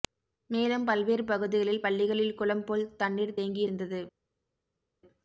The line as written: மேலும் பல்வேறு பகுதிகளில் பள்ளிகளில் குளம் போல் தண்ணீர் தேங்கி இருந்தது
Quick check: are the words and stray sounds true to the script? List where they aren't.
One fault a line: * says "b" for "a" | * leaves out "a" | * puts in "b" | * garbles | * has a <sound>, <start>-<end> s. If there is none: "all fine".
all fine